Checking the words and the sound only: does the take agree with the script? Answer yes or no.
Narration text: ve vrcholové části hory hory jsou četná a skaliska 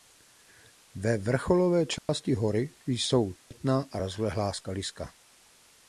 no